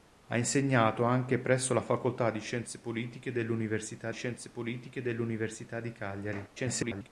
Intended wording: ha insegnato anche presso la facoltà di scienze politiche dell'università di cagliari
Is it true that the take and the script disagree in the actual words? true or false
true